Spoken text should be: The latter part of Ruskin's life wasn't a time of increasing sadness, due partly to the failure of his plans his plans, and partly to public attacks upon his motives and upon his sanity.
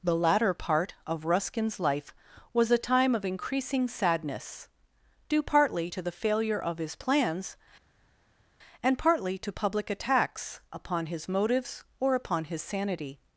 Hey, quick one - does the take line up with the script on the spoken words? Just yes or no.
no